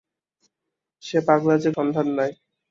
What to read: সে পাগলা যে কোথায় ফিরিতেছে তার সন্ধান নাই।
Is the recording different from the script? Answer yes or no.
yes